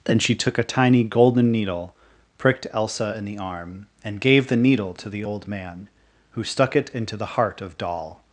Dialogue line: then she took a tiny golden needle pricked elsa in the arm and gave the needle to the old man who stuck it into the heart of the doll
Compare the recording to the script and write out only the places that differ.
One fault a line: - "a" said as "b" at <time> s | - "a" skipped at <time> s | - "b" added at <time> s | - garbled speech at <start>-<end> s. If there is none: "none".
- "the" skipped at 7.8 s